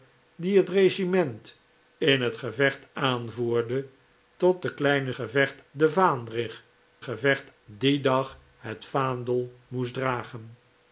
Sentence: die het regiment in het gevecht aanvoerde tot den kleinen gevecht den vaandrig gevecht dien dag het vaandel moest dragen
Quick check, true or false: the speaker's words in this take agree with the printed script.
true